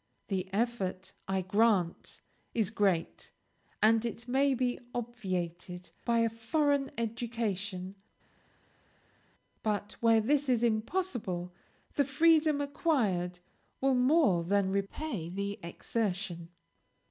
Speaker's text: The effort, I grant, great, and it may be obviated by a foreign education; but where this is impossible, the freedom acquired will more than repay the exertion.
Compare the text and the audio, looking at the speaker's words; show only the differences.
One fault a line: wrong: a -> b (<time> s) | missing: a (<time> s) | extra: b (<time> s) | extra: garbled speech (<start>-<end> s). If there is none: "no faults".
extra: is (2.5 s)